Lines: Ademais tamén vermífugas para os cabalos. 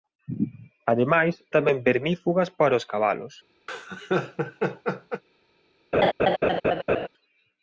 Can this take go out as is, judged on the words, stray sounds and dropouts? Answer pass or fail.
fail